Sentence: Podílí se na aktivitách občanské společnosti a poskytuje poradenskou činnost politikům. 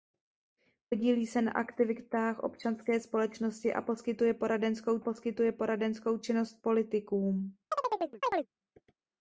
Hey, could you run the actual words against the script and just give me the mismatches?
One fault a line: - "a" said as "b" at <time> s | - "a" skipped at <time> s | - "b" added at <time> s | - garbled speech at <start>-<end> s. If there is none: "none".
- "poskytuje poradenskou" added at 5.0 s